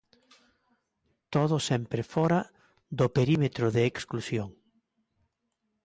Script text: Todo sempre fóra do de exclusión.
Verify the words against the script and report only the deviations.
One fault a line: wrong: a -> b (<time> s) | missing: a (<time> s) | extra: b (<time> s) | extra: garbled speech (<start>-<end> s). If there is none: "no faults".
extra: perímetro (3.2 s)